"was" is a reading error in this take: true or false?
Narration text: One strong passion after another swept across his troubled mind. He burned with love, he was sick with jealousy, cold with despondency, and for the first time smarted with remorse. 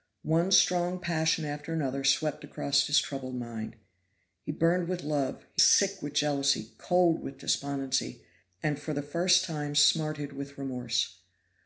true